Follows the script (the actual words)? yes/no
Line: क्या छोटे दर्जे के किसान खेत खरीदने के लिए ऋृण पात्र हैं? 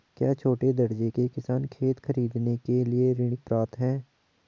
yes